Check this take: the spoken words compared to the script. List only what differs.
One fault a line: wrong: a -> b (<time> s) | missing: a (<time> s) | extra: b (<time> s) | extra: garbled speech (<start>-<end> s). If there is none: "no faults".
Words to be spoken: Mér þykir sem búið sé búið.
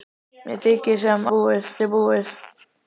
no faults